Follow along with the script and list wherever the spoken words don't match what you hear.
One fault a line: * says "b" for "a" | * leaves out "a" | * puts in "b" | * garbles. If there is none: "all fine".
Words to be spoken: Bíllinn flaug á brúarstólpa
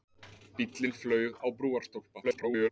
* garbles